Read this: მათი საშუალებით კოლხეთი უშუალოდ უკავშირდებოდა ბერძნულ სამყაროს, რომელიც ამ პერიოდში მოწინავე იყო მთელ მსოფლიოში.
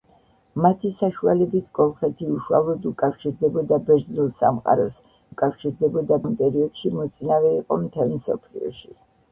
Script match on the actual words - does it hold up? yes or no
no